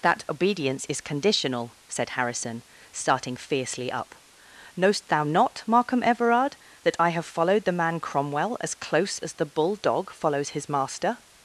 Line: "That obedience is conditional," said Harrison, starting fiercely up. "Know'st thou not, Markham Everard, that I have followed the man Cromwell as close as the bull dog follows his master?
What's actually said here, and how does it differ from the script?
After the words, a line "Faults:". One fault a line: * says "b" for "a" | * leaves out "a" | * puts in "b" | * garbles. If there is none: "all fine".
"That obedience is conditional," said Harrison, starting fiercely up. "Know'st thou not, Markham Everard, that I have followed the man Cromwell as close as the bull dog follows his master?
Faults:
all fine